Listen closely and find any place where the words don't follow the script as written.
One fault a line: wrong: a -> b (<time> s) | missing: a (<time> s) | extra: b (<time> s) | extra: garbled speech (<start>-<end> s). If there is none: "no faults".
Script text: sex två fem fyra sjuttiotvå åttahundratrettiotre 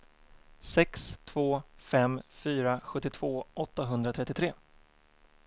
no faults